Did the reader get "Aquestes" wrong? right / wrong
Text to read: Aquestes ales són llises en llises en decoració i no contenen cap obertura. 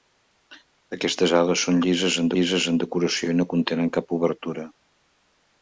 right